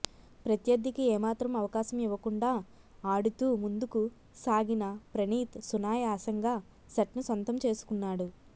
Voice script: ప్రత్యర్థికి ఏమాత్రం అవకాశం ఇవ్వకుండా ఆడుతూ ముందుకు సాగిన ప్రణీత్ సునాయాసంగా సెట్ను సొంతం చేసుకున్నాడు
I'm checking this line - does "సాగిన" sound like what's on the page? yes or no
yes